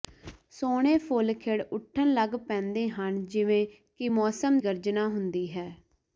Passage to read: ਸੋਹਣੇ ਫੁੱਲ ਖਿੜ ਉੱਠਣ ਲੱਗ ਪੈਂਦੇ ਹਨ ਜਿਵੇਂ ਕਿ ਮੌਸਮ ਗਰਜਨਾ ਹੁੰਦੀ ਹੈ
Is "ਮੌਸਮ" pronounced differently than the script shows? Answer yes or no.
no